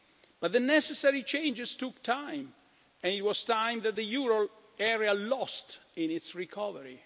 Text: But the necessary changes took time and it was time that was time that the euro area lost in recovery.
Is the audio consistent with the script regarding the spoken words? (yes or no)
no